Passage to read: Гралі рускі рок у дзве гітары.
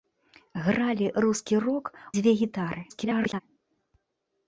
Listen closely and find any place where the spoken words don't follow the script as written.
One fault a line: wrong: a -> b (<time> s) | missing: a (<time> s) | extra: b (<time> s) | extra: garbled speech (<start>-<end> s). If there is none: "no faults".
missing: у (1.9 s)
extra: garbled speech (2.9-3.4 s)